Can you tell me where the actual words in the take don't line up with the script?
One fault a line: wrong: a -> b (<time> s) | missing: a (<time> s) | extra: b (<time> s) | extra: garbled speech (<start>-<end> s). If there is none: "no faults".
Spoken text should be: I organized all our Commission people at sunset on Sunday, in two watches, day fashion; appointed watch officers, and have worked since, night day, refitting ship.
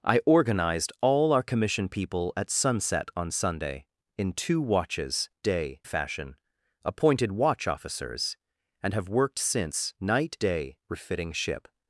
no faults